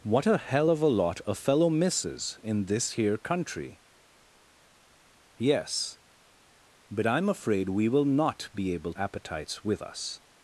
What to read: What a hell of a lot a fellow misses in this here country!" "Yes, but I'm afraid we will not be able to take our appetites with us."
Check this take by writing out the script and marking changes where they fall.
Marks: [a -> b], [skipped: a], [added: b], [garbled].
What a hell of a lot a fellow misses in this here country!" "Yes, but I'm afraid we will not be able [skipped: to take our] appetites with us."